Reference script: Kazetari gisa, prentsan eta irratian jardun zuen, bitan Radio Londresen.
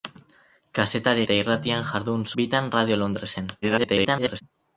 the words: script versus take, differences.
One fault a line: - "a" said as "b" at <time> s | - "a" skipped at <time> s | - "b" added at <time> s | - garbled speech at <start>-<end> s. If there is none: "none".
- "gisa prentsan" skipped at 1.2 s
- "zuen" skipped at 2.3 s
- garbled speech at 3.6-4.4 s